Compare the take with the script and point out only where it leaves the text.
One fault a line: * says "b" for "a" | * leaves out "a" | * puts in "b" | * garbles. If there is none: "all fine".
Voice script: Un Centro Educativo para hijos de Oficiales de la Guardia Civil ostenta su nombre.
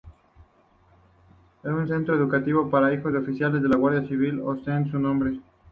all fine